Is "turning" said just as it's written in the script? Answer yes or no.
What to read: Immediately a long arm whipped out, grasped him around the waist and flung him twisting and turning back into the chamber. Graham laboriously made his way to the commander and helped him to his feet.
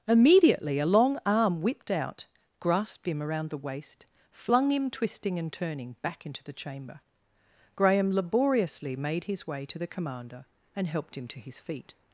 yes